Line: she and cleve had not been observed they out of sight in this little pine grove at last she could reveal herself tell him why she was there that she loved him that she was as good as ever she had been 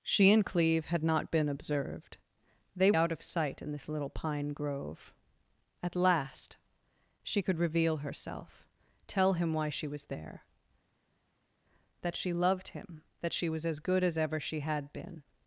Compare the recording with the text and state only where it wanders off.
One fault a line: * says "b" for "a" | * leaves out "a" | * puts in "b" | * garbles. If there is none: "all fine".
all fine